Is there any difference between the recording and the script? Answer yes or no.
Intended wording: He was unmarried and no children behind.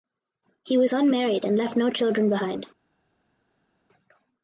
yes